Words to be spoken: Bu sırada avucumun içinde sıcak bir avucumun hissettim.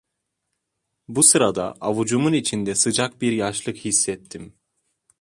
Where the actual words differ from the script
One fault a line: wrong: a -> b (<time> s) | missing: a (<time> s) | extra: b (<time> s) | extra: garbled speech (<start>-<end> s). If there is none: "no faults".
wrong: avucumun -> yaşlık (3.3 s)